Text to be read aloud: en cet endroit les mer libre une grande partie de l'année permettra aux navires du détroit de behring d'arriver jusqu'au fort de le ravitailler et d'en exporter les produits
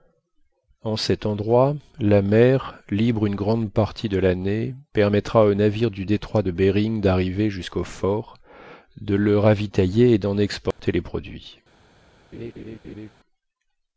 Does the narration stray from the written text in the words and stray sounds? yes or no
yes